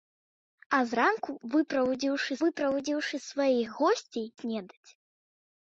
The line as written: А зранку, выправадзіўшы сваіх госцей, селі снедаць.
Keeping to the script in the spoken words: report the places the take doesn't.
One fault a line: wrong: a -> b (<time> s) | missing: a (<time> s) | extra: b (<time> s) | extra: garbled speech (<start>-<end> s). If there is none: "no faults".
extra: выправадзіўшы (2.4 s)
missing: селі (4.2 s)